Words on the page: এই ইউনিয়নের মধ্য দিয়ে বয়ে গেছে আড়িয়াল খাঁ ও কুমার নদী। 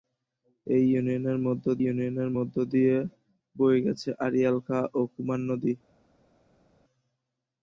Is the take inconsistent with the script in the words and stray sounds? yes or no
yes